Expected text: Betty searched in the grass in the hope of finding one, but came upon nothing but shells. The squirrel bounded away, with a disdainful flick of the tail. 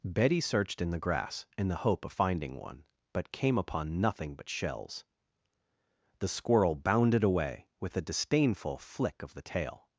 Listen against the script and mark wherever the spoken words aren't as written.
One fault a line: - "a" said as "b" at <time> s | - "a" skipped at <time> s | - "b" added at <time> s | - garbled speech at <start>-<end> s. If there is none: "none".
none